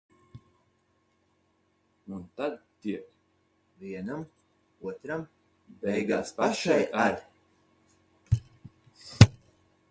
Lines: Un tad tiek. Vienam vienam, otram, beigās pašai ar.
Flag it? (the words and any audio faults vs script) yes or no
yes